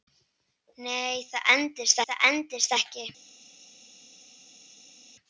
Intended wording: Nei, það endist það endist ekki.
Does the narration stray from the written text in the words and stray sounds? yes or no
no